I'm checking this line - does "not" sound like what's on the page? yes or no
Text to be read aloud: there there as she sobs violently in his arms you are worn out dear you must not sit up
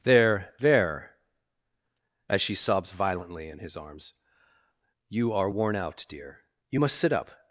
no